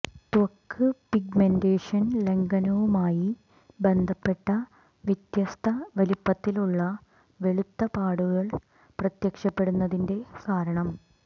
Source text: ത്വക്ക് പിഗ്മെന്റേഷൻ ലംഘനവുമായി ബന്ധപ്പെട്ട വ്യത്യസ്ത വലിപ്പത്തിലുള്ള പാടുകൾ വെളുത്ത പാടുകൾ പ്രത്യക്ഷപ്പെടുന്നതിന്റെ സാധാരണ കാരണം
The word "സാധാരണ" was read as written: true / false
false